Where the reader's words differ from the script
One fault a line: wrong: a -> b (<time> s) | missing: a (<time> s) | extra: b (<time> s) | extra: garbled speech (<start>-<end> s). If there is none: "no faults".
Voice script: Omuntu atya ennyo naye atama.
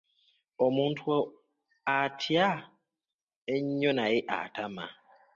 no faults